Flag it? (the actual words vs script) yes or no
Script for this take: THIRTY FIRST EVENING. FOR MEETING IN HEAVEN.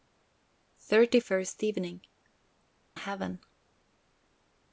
yes